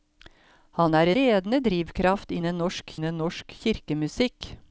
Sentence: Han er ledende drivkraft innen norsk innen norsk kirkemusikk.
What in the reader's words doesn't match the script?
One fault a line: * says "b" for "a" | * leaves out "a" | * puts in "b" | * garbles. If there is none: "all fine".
all fine